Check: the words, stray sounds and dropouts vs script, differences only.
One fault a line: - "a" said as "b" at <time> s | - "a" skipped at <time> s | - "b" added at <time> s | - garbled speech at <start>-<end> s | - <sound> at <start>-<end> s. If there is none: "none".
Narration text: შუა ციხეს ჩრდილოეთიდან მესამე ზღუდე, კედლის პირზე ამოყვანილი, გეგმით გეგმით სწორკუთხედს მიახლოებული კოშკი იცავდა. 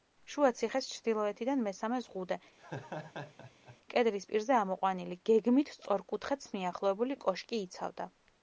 - laugh at 2.6-3.8 s
- "გეგმით" skipped at 5.8 s